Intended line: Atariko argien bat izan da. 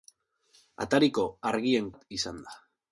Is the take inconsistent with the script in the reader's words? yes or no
no